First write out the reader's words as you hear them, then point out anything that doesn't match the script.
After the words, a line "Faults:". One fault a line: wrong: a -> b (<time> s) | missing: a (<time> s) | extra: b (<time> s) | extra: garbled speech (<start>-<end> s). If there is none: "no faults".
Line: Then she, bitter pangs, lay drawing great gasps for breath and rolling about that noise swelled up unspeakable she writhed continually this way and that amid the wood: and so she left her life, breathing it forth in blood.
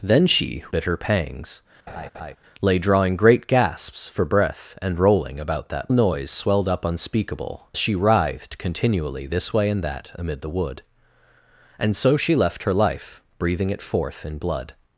Then she, bitter pangs, lay drawing great gasps for breath and rolling about that noise swelled up unspeakable she writhed continually this way and that amid the wood: and so she left her life, breathing it forth in blood.
Faults:
no faults